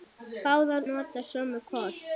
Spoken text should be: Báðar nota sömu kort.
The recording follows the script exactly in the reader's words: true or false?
true